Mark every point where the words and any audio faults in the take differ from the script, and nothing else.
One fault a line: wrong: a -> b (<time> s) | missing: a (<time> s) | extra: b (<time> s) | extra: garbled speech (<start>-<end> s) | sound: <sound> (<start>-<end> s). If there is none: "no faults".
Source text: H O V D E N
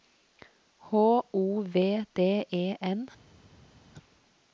no faults